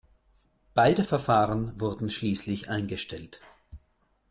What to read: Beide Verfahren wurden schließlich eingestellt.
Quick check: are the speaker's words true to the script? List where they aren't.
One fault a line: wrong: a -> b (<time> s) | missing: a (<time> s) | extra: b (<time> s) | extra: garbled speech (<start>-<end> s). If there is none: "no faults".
no faults